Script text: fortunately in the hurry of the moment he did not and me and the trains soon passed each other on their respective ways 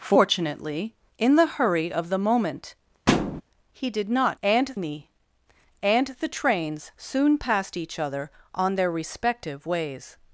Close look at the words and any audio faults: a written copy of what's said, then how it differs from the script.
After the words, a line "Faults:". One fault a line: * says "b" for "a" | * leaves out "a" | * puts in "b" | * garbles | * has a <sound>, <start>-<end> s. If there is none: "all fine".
fortunately in the hurry of the moment he did not and me and the trains soon passed each other on their respective ways
Faults:
* has a thud, 3.1-3.4 s